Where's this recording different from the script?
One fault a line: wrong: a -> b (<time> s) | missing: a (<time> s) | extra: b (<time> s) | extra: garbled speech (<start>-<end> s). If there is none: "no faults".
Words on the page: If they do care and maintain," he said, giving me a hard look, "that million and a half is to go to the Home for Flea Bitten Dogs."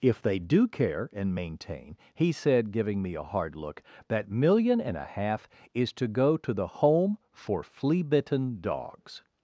no faults